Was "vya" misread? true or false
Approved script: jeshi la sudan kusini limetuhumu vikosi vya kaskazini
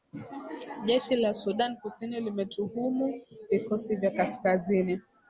false